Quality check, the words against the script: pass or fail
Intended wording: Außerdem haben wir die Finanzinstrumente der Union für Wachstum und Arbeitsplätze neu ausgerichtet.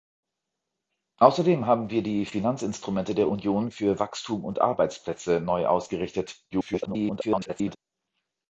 fail